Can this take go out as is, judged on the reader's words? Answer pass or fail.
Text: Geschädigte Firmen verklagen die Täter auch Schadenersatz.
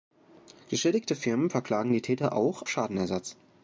pass